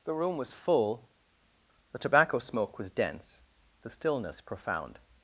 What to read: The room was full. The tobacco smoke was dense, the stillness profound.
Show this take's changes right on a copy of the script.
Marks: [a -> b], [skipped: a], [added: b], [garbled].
The room was full. The tobacco smoke was dense, the stillness profound.